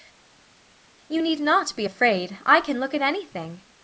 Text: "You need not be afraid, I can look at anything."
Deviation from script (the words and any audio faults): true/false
false